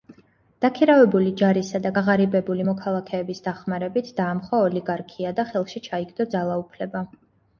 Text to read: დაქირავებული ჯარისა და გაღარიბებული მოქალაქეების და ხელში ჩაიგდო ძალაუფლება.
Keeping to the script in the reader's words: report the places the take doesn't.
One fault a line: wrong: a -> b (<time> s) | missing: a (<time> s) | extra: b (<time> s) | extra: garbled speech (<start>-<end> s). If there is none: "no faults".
extra: დახმარებით დაამხო ოლიგარქია (3.5 s)